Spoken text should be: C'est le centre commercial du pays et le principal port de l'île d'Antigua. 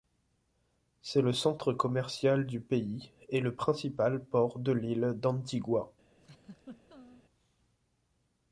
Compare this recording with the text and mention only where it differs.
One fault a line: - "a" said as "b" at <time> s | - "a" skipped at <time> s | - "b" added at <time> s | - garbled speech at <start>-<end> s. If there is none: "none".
none